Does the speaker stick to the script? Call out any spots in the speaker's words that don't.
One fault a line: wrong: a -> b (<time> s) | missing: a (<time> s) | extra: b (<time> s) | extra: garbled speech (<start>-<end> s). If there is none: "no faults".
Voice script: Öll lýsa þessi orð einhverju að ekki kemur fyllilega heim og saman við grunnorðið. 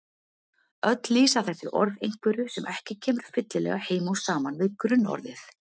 wrong: að -> sem (2.5 s)